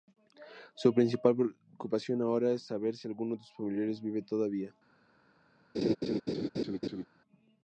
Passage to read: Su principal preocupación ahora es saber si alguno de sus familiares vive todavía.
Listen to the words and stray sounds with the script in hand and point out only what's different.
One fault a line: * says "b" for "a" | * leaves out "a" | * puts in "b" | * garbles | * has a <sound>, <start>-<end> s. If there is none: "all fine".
* has a laugh, 5.7-7.1 s